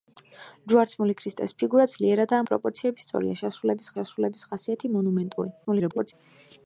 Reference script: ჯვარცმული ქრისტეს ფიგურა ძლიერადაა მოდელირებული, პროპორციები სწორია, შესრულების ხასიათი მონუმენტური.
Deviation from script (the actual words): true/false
true